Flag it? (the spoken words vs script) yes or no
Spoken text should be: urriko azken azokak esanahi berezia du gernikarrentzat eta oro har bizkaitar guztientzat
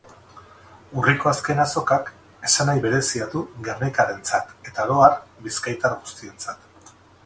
no